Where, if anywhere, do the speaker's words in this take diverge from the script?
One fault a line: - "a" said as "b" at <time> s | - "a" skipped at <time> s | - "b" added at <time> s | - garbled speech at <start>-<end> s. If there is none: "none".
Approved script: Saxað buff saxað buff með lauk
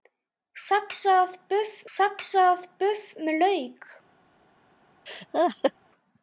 none